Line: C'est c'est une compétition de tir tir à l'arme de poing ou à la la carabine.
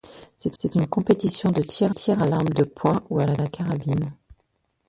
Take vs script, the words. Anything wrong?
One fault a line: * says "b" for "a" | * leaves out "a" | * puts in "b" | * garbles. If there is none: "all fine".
all fine